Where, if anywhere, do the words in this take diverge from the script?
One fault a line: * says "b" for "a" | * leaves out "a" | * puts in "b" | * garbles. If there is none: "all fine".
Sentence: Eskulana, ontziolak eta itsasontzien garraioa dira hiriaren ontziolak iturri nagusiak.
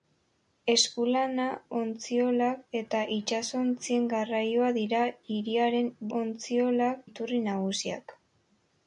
all fine